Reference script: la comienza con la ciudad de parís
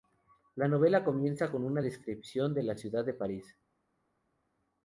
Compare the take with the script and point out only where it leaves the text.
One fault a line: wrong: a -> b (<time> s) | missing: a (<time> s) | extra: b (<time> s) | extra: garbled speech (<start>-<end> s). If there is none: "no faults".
extra: novela (0.7 s)
extra: una descripción de (1.6 s)